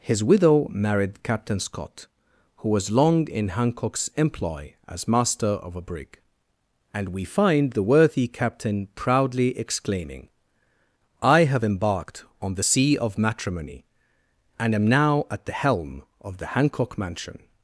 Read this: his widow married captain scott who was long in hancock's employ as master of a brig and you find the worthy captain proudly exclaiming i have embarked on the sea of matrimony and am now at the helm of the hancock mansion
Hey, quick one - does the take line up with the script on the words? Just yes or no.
no